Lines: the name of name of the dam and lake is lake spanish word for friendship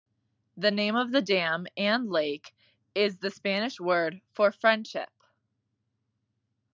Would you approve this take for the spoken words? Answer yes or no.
no